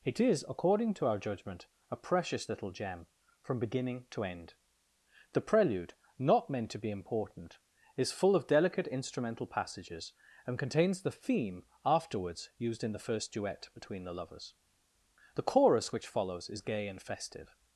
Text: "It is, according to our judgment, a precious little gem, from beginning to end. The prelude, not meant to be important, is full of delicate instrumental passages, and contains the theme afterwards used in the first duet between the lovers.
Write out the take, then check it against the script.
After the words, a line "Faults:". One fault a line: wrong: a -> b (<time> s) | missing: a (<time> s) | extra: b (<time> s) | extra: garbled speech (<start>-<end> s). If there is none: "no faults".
"It is, according to our judgment, a precious little gem, from beginning to end. The prelude, not meant to be important, is full of delicate instrumental passages, and contains the theme afterwards used in the first duet between the lovers. The chorus which follows is gay and festive
Faults:
extra: The chorus which follows is gay and festive (15.3 s)